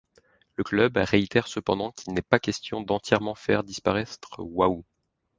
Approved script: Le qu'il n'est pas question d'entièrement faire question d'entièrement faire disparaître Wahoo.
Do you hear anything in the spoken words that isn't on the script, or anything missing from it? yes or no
yes